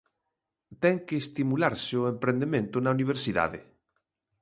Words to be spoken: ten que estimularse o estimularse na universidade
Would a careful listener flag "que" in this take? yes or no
no